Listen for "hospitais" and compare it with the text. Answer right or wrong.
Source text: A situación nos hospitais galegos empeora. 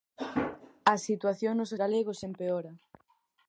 wrong